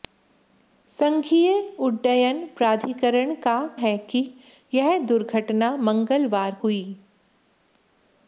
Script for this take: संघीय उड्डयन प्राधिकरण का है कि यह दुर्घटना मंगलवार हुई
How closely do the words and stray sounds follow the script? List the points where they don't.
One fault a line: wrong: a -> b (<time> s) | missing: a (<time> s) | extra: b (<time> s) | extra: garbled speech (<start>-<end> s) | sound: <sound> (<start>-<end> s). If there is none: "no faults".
no faults